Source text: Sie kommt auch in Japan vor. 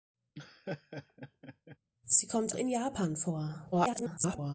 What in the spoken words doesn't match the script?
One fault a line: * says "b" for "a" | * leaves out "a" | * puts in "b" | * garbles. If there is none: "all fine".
* leaves out "auch"
* garbles